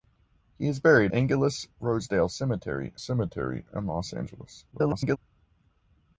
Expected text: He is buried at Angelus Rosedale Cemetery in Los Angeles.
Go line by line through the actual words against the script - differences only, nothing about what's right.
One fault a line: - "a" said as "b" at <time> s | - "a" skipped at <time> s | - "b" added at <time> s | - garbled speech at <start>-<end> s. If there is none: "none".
- "at" skipped at 1.1 s
- "Cemetery" added at 3.0 s
- garbled speech at 4.7-5.2 s